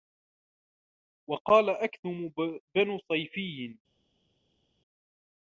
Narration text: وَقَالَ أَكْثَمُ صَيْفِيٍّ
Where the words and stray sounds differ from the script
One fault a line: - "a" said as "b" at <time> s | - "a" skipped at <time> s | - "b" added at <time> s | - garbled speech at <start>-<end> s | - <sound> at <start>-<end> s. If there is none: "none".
- "بْنُ" added at 2.7 s